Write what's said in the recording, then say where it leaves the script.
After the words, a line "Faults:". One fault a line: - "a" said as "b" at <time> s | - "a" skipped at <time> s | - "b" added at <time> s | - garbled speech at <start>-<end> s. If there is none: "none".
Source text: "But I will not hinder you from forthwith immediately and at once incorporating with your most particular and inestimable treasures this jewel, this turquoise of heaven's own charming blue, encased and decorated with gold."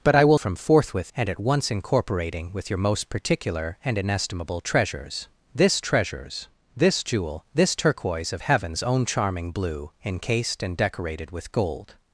"But I will from forthwith and at once incorporating with your most particular and inestimable treasures this treasures this jewel, this turquoise of heaven's own charming blue, encased and decorated with gold."
Faults:
- "not hinder you" skipped at 0.4 s
- "immediately" skipped at 1.1 s
- "treasures this" added at 5.8 s